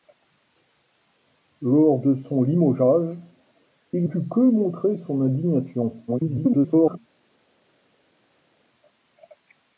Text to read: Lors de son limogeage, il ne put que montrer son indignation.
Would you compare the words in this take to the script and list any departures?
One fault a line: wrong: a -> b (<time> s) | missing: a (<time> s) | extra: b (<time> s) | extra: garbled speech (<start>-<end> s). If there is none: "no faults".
missing: ne (4.1 s)
extra: garbled speech (6.1-7.0 s)